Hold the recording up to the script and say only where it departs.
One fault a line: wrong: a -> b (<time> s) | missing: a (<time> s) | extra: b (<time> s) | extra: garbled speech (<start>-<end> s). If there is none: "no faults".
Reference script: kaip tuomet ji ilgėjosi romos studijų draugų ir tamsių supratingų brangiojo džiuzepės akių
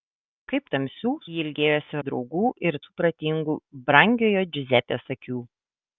wrong: tuomet -> tamsių (0.8 s)
missing: romos studijų (2.0 s)
missing: tamsių (2.8 s)